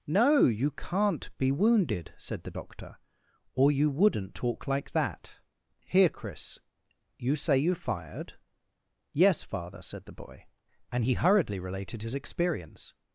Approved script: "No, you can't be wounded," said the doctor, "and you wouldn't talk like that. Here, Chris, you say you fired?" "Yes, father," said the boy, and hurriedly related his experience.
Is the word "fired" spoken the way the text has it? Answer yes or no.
yes